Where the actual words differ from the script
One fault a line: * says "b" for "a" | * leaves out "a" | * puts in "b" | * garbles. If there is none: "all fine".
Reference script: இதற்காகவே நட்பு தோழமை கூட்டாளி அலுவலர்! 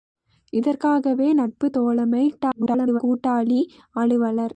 * garbles